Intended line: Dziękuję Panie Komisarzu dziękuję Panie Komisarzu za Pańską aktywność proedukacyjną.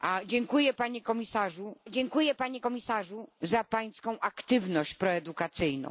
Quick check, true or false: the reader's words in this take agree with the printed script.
true